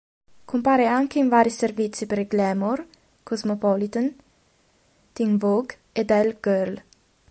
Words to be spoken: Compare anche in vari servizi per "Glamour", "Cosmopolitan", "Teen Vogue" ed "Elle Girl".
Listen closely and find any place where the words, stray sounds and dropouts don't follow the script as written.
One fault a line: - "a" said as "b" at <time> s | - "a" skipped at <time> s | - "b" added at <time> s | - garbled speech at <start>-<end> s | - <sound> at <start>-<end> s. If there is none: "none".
none